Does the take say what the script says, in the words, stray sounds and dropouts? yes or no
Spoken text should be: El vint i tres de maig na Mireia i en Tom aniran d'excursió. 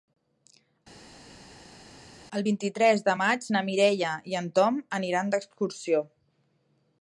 yes